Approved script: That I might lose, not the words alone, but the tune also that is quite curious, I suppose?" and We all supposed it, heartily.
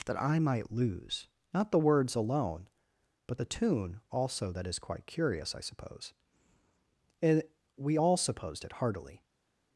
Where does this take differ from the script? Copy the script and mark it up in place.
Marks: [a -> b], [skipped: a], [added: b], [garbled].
That I might lose, not the words alone, but the tune also that is quite curious, I suppose?" and We all supposed it, heartily.